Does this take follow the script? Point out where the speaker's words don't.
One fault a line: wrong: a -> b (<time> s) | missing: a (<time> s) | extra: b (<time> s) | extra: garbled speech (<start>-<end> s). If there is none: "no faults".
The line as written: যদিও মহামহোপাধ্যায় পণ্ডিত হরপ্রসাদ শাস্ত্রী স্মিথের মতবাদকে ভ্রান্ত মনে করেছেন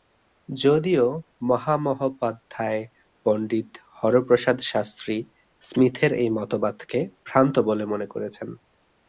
extra: এই (6.1 s)
extra: বলে (7.7 s)